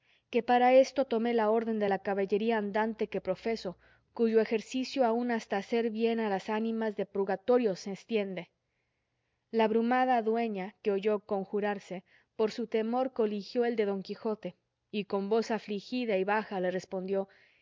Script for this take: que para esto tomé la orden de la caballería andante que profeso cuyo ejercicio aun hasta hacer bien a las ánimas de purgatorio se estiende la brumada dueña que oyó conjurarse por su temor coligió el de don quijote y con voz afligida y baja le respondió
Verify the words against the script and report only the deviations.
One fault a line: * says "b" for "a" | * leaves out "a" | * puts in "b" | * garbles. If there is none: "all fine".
all fine